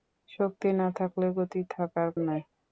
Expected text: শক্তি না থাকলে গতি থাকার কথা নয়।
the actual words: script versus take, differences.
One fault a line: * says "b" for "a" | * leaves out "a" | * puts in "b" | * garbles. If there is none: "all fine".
* leaves out "কথা"